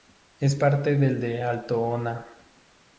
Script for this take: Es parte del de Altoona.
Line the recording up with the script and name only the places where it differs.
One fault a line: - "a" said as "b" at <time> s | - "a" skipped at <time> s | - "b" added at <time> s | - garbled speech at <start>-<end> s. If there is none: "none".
none